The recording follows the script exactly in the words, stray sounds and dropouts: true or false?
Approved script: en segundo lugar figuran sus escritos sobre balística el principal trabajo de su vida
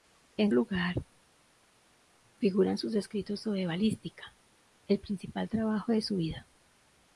false